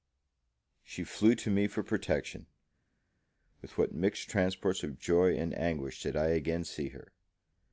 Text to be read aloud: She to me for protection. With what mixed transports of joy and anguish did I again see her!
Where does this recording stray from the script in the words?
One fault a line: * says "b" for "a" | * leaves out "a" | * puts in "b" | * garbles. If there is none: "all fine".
* puts in "flew"